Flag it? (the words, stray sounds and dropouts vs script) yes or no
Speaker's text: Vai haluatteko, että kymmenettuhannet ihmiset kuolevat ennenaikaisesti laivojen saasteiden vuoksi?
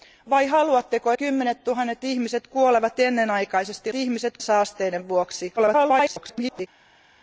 yes